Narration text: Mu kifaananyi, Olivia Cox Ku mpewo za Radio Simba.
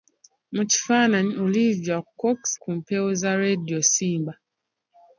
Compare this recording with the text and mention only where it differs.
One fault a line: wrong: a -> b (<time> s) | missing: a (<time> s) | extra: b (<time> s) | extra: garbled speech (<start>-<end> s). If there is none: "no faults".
no faults